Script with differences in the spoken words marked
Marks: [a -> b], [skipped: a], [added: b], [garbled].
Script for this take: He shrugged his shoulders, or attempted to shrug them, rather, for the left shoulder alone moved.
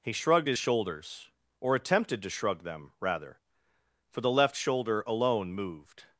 He shrugged his shoulders, or attempted to shrug them, rather, for the left shoulder alone moved.